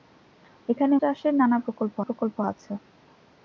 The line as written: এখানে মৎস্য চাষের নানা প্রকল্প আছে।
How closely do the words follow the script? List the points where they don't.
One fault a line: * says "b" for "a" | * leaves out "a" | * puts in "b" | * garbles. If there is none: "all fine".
* leaves out "মৎস্য"
* puts in "প্রকল্প"